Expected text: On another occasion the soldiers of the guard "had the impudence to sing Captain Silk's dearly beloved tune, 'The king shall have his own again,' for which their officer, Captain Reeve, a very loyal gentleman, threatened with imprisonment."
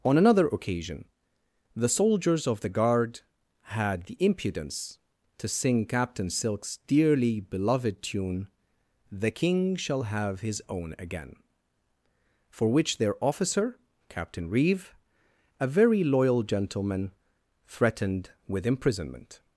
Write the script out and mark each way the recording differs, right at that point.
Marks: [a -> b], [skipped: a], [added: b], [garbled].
On another occasion the soldiers of the guard "had the impudence to sing Captain Silk's dearly beloved tune, 'The king shall have his own again,' for which their officer, Captain Reeve, a very loyal gentleman, threatened with imprisonment."